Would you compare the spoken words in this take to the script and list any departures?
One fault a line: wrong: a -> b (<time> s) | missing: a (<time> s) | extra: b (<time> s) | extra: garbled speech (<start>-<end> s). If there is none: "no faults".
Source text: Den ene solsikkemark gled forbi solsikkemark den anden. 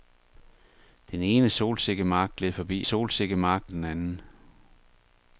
no faults